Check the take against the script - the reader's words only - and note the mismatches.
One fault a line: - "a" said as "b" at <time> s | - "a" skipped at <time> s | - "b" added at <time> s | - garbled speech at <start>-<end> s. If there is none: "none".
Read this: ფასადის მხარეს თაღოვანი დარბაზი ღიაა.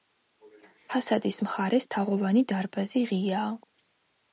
none